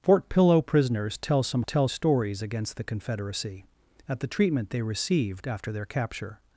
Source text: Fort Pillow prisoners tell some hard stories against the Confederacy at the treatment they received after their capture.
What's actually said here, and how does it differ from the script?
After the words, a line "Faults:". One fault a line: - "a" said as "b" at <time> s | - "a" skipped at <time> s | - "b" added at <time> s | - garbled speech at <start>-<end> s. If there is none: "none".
Fort Pillow prisoners tell some tell stories against the Confederacy at the treatment they received after their capture.
Faults:
- "hard" said as "tell" at 1.6 s